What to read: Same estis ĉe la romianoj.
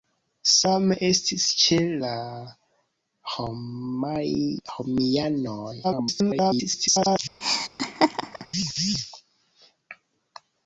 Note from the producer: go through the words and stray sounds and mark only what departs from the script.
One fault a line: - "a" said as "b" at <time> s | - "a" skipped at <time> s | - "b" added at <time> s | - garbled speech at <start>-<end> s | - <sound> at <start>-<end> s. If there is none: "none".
- garbled speech at 5.8-7.2 s
- laugh at 7.4-8.5 s